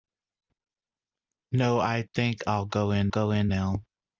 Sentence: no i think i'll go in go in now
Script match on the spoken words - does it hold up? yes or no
yes